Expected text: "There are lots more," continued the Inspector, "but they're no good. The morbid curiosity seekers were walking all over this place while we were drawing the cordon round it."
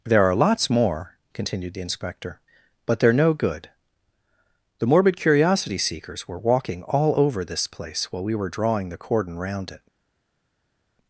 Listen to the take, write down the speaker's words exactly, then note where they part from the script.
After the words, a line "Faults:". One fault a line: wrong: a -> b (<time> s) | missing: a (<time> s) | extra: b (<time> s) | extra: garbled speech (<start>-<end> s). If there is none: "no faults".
"There are lots more," continued the Inspector, "but they're no good. The morbid curiosity seekers were walking all over this place while we were drawing the cordon round it."
Faults:
no faults